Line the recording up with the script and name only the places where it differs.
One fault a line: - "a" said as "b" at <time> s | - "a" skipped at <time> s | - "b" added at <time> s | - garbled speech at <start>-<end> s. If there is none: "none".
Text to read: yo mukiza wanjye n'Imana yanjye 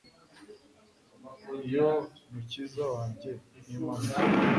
none